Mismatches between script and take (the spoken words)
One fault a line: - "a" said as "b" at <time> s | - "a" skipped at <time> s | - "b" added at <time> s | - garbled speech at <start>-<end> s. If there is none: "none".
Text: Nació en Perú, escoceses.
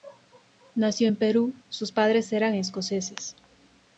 - "sus padres eran" added at 1.7 s